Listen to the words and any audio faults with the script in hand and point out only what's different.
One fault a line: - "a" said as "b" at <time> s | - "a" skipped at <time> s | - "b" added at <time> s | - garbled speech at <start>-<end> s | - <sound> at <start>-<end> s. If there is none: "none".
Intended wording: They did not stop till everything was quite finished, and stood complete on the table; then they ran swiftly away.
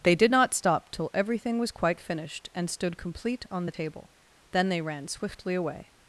none